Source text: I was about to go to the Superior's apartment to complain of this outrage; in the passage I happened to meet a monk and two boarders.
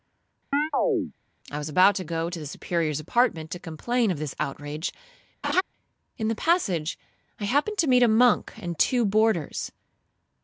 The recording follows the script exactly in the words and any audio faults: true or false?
false